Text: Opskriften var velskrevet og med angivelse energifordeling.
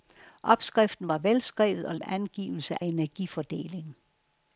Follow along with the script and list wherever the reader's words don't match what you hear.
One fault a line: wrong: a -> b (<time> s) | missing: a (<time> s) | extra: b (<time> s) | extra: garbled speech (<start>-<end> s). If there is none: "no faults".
no faults